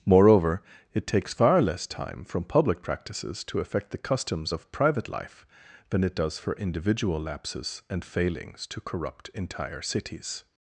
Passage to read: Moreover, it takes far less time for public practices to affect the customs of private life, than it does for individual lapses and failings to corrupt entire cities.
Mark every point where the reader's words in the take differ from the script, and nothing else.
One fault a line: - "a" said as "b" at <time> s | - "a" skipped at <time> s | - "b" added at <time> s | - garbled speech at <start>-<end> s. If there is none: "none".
- "for" said as "from" at 2.2 s